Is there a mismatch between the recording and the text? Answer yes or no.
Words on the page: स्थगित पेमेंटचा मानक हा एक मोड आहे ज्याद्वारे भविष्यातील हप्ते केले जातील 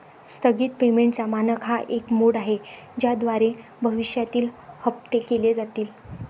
no